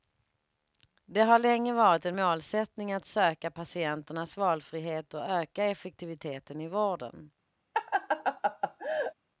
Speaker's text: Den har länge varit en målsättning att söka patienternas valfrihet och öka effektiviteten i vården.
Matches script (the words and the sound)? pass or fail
fail